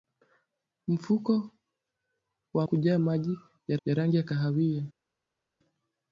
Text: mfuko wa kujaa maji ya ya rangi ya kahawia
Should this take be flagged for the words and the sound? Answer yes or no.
no